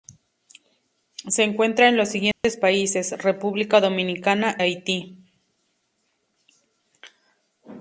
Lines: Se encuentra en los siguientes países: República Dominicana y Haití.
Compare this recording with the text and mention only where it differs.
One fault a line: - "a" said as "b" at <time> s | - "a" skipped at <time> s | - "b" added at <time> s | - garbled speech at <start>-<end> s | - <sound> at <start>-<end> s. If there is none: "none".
- dropout at 2.3-2.4 s
- "y" skipped at 4.6 s